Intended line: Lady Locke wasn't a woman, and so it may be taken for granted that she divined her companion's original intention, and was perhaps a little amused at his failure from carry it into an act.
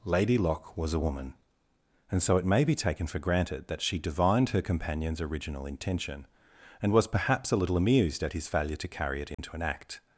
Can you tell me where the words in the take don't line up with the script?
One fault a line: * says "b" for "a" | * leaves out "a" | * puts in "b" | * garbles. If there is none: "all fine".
* says "was" for "wasn't"
* says "to" for "from"